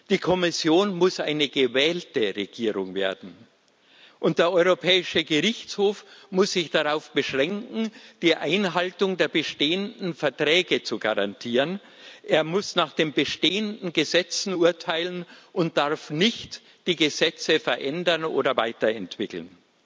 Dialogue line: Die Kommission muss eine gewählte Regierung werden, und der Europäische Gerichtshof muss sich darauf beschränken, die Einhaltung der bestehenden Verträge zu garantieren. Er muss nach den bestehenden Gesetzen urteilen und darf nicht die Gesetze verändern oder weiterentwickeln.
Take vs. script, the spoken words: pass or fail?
pass